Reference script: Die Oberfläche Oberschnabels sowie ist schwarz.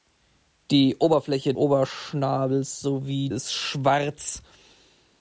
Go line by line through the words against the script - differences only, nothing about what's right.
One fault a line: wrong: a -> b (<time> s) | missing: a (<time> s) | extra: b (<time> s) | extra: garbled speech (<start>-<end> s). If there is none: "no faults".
no faults